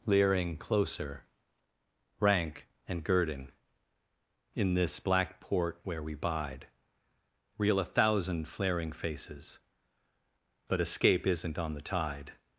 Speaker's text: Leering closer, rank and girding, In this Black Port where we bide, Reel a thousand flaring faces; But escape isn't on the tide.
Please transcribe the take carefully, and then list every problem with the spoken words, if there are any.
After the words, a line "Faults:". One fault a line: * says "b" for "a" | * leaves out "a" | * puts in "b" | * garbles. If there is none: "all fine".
Leering closer, rank and girding, In this Black Port where we bide, Reel a thousand flaring faces; But escape isn't on the tide.
Faults:
all fine